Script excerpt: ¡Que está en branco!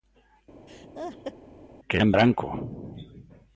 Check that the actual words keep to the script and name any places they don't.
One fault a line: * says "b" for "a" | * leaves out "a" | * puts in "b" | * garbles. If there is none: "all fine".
* leaves out "está"